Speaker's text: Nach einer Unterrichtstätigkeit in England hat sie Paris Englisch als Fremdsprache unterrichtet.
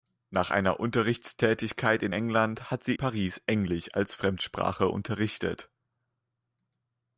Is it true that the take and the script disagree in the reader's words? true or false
false